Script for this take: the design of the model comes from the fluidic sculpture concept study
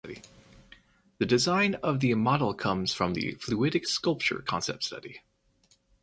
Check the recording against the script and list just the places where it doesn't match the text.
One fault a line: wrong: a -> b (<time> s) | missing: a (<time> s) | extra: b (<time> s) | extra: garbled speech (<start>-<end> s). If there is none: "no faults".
no faults